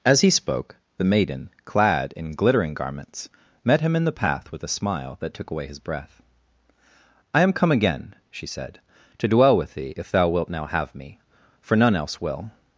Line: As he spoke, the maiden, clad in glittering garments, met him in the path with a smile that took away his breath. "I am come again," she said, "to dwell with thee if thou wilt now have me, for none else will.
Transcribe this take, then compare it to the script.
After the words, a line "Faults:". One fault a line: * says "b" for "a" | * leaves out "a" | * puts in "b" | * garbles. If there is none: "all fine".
As he spoke, the maiden, clad in glittering garments, met him in the path with a smile that took away his breath. "I am come again," she said, "to dwell with thee if thou wilt now have me, for none else will.
Faults:
all fine